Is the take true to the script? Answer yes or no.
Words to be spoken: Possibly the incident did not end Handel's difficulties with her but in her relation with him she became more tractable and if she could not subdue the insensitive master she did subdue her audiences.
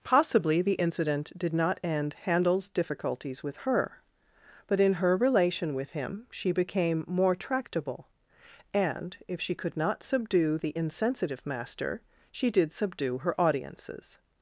yes